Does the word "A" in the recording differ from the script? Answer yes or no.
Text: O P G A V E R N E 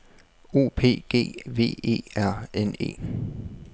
yes